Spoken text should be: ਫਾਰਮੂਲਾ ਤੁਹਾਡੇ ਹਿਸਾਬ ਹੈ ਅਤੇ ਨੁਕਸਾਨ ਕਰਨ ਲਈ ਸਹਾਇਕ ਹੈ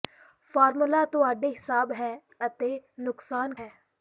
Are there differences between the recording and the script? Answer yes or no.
yes